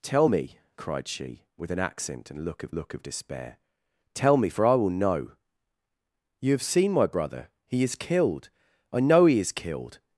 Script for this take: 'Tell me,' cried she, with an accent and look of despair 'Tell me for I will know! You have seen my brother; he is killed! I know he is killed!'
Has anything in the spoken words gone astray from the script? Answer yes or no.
yes